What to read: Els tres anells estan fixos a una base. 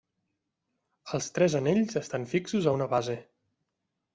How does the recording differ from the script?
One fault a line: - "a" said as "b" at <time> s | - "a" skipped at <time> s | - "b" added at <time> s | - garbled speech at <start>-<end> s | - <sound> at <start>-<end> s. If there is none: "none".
none